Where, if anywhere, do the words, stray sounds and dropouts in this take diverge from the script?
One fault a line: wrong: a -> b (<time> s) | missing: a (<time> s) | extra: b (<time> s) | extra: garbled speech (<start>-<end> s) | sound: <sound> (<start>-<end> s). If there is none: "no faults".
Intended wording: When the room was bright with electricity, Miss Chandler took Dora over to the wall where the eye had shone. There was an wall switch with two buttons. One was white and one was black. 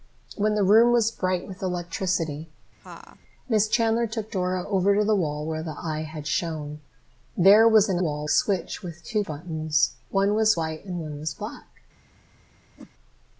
sound: laugh (2.8-3.2 s)
sound: whoosh (12.8-12.9 s)